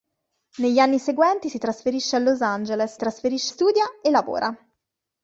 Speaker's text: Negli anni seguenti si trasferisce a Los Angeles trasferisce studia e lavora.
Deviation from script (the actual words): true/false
false